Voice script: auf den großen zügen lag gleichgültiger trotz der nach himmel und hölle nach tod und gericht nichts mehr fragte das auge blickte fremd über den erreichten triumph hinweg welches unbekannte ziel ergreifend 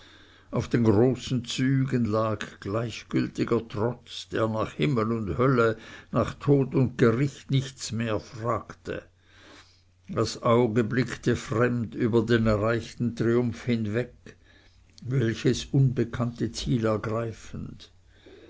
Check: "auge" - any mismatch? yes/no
no